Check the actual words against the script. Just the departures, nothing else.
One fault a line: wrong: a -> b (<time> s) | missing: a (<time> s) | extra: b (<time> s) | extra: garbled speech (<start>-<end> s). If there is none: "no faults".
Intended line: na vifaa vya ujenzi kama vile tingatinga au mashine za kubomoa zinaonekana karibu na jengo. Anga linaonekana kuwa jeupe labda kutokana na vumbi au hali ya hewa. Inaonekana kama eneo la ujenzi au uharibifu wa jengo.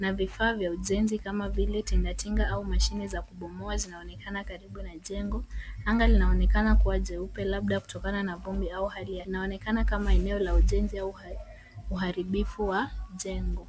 missing: hewa (9.3 s)